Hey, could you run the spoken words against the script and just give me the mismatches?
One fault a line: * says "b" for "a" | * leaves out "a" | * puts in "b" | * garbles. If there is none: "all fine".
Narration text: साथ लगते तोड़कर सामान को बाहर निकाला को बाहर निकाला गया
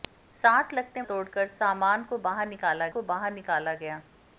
all fine